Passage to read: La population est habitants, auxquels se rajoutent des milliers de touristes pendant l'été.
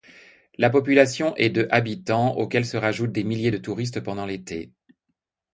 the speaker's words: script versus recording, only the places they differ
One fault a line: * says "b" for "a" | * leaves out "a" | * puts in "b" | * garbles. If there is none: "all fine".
* puts in "de"